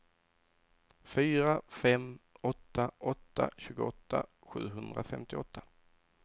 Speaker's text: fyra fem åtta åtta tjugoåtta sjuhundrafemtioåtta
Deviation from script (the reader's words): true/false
false